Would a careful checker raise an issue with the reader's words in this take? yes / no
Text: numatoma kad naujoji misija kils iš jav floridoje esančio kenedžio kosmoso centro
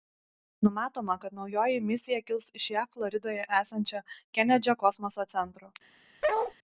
no